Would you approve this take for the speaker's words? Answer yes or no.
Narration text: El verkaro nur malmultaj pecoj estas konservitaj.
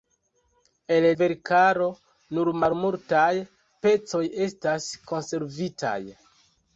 yes